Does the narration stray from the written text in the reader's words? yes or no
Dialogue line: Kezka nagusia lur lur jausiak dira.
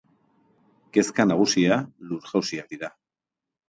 yes